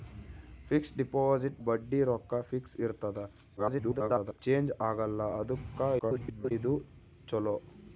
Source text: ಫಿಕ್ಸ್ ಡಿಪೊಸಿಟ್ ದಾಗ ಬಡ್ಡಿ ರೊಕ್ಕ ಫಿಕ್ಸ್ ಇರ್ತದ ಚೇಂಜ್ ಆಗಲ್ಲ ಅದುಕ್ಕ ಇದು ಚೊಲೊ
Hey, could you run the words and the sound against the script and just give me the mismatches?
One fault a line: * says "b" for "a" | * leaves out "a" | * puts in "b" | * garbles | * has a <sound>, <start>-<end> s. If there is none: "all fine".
* leaves out "ದಾಗ"
* garbles
* garbles